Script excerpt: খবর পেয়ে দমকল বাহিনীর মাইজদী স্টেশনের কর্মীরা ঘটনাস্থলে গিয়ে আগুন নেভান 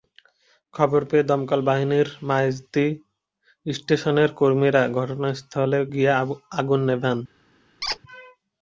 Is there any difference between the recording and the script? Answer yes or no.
no